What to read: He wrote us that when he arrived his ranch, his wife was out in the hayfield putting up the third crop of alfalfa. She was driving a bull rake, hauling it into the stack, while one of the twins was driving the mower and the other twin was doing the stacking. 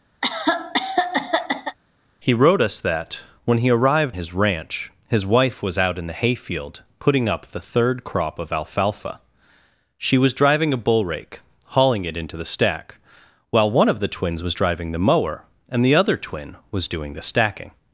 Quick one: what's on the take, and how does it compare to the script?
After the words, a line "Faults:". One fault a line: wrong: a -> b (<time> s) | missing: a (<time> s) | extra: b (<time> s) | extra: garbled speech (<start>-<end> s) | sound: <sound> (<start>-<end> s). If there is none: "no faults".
He wrote us that when he arrived his ranch, his wife was out in the hayfield putting up the third crop of alfalfa. She was driving a bull rake, hauling it into the stack, while one of the twins was driving the mower and the other twin was doing the stacking.
Faults:
sound: cough (0.2-1.8 s)